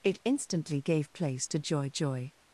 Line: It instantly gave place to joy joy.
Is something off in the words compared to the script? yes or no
no